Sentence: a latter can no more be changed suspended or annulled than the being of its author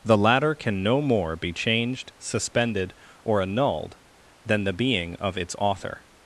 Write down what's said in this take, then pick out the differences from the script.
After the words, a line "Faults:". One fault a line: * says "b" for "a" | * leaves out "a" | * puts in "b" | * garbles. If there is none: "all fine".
the latter can no more be changed suspended or annulled than the being of its author
Faults:
* says "the" for "a"